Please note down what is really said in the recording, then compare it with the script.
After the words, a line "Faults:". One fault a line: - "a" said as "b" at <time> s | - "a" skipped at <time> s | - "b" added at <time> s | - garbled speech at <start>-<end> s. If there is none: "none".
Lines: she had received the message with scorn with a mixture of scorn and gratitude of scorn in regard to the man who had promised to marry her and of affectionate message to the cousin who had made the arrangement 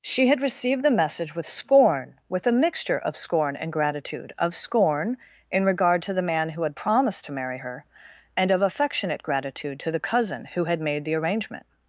she had received the message with scorn with a mixture of scorn and gratitude of scorn in regard to the man who had promised to marry her and of affectionate gratitude to the cousin who had made the arrangement
Faults:
- "message" said as "gratitude" at 9.2 s